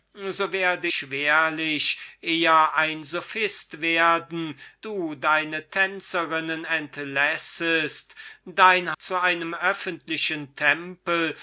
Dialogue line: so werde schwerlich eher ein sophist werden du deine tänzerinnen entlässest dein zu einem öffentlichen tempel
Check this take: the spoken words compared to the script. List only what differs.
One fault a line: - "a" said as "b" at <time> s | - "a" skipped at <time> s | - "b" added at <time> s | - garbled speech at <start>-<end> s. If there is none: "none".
none